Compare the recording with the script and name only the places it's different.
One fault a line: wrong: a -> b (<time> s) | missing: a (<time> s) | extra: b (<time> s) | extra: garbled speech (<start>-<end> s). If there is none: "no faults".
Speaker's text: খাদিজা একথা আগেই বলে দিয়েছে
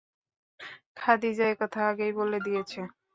no faults